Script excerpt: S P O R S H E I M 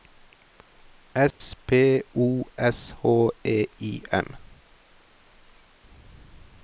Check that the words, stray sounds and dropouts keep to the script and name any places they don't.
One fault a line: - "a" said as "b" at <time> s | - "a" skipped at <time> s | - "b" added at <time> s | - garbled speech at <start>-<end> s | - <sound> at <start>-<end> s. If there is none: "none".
- dropout at 1.3-1.4 s
- "R" skipped at 2.4 s